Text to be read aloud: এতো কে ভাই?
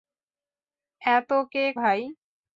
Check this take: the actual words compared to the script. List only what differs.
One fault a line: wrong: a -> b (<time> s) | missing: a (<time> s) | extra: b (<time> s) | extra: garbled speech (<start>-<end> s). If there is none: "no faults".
no faults